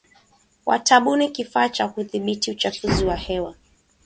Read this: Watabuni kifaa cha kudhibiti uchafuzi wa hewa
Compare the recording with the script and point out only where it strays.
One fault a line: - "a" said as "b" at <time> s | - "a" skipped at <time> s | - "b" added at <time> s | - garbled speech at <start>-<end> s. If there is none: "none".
none